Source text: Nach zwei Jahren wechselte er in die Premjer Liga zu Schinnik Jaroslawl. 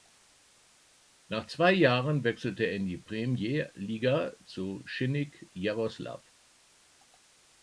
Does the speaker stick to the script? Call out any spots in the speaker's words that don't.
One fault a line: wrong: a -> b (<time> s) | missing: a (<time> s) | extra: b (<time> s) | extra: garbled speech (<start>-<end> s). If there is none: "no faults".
no faults